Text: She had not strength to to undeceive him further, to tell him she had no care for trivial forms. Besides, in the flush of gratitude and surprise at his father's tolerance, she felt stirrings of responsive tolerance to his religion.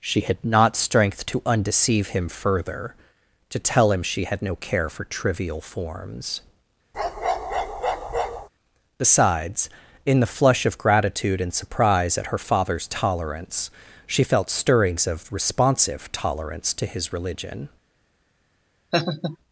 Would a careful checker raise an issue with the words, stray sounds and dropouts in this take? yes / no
yes